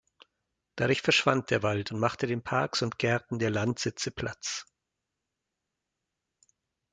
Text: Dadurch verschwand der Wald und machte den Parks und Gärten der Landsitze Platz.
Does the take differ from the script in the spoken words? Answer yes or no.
no